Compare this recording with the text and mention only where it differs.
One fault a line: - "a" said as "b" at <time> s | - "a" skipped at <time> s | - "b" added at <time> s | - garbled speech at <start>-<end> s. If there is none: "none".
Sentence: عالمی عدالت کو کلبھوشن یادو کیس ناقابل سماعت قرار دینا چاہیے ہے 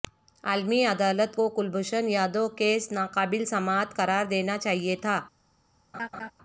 - "ہے" said as "تھا" at 4.9 s